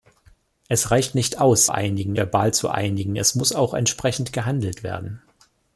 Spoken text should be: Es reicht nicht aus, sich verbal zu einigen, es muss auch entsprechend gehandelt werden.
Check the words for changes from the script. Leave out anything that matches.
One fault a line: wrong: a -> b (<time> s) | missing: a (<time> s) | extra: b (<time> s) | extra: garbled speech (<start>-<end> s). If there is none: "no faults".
wrong: sich -> einigen (1.7 s)